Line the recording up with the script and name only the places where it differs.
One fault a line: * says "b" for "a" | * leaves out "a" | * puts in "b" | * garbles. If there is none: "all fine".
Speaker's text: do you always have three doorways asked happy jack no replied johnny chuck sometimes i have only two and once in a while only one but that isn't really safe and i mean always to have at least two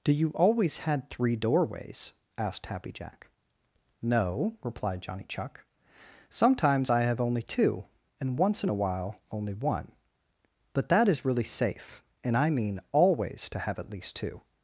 * says "had" for "have"
* says "is" for "isn't"